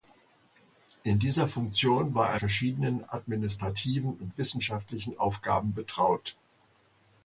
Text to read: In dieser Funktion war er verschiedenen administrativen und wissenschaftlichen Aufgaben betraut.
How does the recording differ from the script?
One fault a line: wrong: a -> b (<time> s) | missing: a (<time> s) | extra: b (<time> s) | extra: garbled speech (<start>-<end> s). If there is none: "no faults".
no faults